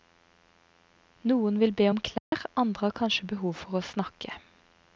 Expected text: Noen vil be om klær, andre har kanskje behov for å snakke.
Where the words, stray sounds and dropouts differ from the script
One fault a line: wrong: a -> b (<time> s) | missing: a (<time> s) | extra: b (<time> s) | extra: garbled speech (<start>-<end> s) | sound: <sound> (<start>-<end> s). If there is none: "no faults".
sound: dropout (2.2-2.3 s)